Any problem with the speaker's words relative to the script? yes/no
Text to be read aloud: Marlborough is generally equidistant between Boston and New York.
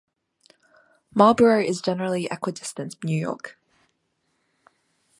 yes